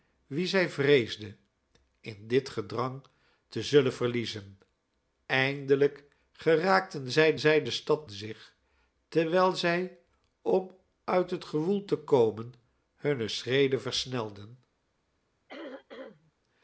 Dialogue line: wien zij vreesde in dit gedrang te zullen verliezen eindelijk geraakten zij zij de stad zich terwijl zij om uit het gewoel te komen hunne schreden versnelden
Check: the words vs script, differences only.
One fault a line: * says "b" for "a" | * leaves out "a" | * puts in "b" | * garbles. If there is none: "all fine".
all fine